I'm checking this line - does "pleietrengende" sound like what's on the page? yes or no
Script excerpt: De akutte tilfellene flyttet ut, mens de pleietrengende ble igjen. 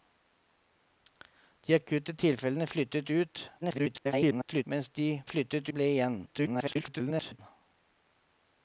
no